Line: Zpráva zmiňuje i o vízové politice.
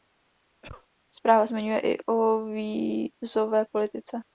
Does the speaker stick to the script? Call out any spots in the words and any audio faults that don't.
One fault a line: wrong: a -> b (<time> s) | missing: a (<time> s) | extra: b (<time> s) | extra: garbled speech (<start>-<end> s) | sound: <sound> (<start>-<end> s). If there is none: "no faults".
sound: cough (0.6-0.9 s)